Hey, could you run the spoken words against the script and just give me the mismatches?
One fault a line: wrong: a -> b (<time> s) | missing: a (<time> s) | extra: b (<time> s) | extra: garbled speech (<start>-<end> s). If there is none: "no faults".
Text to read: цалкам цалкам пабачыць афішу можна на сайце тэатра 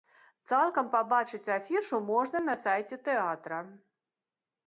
missing: цалкам (0.9 s)